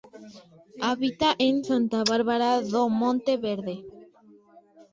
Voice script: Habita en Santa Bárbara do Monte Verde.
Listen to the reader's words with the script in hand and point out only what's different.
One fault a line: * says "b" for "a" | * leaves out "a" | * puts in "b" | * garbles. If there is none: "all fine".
all fine